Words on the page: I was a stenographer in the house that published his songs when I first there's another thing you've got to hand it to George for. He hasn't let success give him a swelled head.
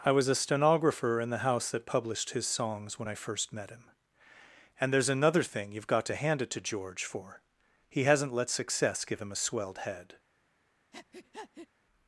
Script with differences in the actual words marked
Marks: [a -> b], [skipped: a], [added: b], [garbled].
I was a stenographer in the house that published his songs when I first [added: met him And] there's another thing you've got to hand it to George for. He hasn't let success give him a swelled head.